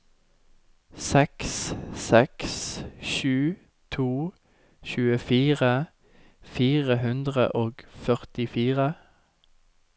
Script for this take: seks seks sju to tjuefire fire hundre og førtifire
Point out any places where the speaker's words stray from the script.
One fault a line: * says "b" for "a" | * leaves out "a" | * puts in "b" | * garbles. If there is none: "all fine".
all fine